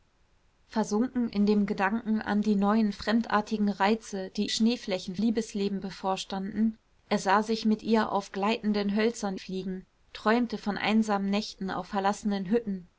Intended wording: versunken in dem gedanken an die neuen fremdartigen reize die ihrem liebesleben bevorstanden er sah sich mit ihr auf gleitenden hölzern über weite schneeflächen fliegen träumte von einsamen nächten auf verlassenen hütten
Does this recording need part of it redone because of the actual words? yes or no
yes